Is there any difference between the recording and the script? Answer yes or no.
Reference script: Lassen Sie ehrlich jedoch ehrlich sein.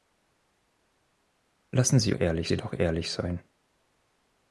no